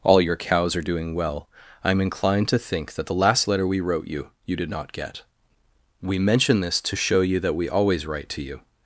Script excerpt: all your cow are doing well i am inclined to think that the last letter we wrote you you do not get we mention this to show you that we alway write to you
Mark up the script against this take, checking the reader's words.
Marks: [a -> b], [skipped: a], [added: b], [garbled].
all your [cow -> cows] are doing well i am inclined to think that the last letter we wrote you you [do -> did] not get we mention this to show you that we [alway -> always] write to you